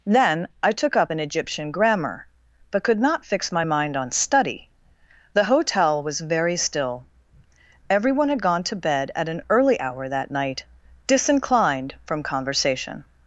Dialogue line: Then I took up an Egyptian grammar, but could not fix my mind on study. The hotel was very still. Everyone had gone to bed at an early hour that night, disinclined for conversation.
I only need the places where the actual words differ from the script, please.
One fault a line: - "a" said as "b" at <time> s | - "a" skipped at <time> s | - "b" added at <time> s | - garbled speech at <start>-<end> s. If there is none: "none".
- "for" said as "from" at 12.1 s